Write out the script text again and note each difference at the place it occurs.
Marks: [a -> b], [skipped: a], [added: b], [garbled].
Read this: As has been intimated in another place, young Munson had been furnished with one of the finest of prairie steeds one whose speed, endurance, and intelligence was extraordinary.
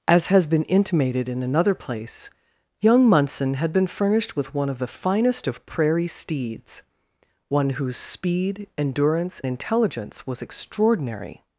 As has been intimated in another place, young Munson had been furnished with one of the finest of prairie steeds one whose speed, endurance, [skipped: and] intelligence was extraordinary.